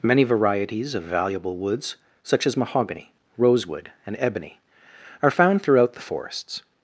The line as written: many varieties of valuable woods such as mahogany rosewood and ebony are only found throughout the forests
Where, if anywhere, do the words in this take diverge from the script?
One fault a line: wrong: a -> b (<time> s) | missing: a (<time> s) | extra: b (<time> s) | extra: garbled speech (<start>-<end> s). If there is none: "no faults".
missing: only (5.3 s)